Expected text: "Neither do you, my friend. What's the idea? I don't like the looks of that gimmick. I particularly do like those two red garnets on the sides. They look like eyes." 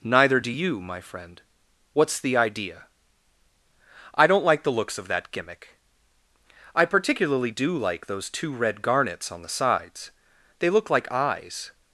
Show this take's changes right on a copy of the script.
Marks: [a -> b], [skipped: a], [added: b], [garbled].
"Neither do you, my friend. What's the idea? I don't like the looks of that gimmick. I particularly do like those two red garnets on the sides. They look like eyes."